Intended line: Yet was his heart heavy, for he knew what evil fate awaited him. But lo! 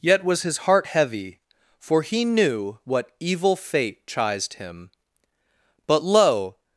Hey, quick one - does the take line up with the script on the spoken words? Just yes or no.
no